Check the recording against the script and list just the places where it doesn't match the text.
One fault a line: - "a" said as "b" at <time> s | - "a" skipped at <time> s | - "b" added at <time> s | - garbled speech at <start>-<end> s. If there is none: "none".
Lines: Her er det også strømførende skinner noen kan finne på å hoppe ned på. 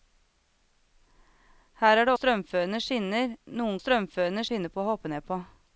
- "også" skipped at 2.1 s
- "kan" said as "strømførende" at 3.8 s